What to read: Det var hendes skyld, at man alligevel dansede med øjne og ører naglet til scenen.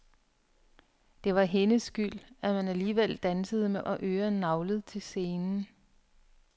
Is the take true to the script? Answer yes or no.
no